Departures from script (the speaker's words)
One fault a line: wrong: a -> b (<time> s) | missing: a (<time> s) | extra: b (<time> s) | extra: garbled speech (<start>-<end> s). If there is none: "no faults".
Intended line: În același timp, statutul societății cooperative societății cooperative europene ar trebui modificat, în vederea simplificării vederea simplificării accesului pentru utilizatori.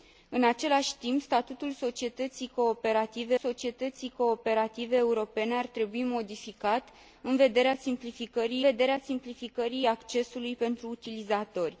no faults